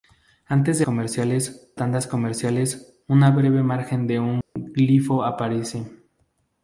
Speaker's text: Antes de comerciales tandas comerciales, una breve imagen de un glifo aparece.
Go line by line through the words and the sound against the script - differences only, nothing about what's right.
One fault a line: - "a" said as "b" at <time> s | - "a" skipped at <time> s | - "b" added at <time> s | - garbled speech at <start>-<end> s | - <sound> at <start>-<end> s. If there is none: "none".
- dropout at 4.4-4.6 s